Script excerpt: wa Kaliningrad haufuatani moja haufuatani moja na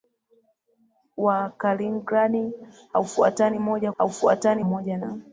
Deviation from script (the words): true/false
false